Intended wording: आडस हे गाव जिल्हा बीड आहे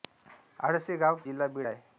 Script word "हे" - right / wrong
right